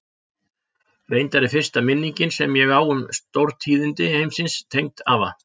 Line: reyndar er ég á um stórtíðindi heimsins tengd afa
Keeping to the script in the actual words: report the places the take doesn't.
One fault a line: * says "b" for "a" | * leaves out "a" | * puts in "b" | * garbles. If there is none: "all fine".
* puts in "fyrsta minningin sem"